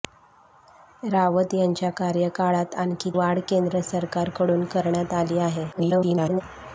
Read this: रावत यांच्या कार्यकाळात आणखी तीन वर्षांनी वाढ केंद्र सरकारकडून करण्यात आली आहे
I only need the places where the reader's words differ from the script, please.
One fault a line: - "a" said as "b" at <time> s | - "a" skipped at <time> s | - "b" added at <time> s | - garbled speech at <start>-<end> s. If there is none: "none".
- "तीन वर्षांनी" skipped at 3.1 s
- garbled speech at 5.7-6.4 s